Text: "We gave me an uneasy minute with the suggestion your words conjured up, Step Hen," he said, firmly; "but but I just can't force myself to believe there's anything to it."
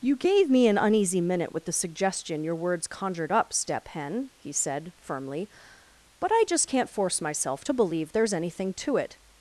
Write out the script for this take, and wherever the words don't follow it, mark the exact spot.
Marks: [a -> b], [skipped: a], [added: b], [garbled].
["We -> You] gave me an uneasy minute with the suggestion your words conjured up, Step Hen," he said, firmly; "but [skipped: but] I just can't force myself to believe there's anything to it."